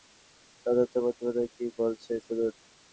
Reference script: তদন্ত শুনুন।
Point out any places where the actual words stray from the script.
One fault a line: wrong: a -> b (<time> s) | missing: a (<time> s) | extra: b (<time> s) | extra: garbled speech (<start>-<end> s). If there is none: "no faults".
extra: প্রতিবেদন কী বলছে (1.0 s)